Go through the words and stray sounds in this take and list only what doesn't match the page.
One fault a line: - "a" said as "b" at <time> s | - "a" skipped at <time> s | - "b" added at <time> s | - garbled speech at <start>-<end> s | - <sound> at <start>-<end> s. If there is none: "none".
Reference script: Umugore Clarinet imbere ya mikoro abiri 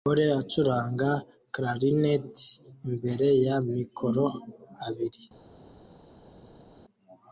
- "acuranga" added at 0.4 s